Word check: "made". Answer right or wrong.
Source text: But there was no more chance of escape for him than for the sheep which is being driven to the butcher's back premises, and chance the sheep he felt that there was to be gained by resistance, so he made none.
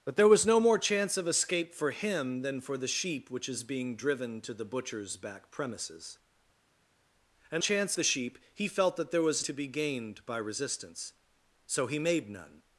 right